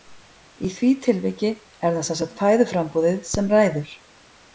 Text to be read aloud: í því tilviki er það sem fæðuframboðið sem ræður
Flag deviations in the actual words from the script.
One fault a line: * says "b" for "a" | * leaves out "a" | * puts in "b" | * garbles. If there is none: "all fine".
* puts in "sagt"